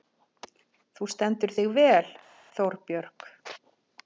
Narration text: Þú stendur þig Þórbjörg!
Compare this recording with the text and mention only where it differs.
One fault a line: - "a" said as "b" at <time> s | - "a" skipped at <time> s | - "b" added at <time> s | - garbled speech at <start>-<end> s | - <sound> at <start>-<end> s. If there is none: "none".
- "vel" added at 1.8 s